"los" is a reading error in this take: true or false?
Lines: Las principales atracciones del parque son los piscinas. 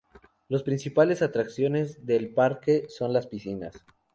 true